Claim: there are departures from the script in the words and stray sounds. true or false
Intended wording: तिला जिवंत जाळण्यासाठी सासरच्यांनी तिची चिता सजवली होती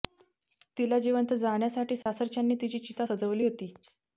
true